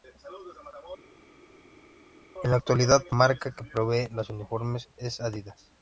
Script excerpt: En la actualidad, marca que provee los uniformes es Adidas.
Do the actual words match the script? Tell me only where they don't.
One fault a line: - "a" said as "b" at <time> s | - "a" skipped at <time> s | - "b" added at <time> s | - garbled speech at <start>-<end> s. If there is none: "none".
none